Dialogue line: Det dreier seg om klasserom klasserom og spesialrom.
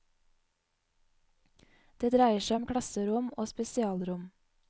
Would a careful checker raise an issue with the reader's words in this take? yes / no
yes